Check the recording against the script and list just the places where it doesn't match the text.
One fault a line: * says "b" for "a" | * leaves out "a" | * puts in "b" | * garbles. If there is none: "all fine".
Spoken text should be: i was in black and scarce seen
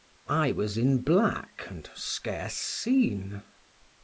all fine